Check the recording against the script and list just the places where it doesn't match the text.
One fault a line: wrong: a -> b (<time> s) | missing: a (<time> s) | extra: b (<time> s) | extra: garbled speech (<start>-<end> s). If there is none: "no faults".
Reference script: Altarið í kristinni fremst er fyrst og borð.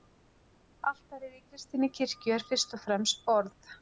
wrong: fremst -> kirkju (2.0 s)
extra: fremst (2.9 s)